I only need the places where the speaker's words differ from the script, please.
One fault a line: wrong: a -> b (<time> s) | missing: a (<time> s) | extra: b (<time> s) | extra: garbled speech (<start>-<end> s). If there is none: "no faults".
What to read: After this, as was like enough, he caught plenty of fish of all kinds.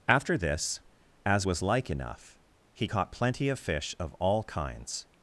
no faults